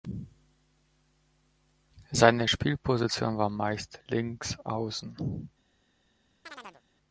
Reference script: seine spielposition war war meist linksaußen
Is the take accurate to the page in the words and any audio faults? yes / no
no